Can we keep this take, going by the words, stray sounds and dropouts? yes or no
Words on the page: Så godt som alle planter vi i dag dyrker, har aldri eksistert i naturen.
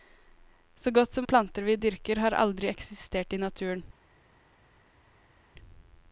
no